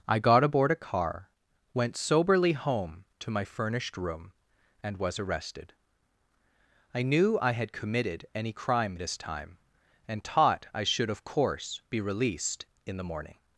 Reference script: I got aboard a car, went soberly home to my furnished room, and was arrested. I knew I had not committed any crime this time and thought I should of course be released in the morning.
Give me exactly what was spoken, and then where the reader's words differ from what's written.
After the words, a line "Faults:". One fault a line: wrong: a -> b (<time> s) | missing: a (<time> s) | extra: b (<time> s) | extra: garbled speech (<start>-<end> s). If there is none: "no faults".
I got aboard a car, went soberly home to my furnished room, and was arrested. I knew I had committed any crime this time and taught I should of course be released in the morning.
Faults:
missing: not (7.7 s)
wrong: thought -> taught (10.2 s)